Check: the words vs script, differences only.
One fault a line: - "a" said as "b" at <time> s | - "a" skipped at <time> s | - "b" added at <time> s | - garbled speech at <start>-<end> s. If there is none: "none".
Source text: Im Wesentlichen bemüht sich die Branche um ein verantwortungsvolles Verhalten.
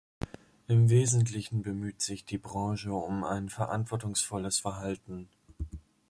none